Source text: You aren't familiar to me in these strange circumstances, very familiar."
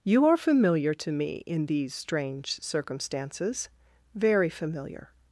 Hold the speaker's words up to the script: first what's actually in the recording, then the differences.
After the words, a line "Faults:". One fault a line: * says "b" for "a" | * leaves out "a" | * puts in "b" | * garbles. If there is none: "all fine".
You are familiar to me in these strange circumstances, very familiar."
Faults:
* says "are" for "aren't"